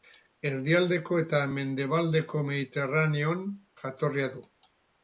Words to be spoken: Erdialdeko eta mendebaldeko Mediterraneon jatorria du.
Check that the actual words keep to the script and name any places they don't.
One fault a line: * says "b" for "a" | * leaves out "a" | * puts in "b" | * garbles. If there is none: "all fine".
all fine